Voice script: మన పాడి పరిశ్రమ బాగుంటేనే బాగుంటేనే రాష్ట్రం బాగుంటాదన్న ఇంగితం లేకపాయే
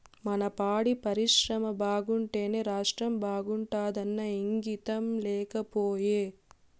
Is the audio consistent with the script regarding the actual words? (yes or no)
no